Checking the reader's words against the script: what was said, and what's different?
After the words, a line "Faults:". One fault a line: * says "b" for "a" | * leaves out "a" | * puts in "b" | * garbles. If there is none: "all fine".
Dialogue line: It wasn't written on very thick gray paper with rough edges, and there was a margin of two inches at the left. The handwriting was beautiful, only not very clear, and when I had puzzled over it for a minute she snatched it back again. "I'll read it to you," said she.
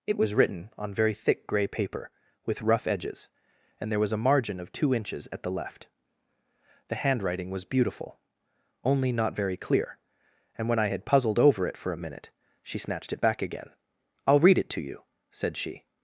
It was written on very thick gray paper with rough edges, and there was a margin of two inches at the left. The handwriting was beautiful, only not very clear, and when I had puzzled over it for a minute she snatched it back again. "I'll read it to you," said she.
Faults:
* says "was" for "wasn't"